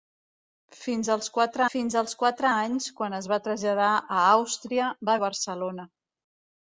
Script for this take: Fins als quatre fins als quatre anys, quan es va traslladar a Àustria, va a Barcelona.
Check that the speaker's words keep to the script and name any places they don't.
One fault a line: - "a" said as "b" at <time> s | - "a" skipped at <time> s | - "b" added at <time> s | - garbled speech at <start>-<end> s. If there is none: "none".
none